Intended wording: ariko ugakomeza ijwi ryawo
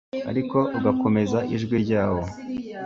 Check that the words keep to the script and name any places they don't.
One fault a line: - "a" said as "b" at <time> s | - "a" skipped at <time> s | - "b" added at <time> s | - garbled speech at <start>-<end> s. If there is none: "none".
none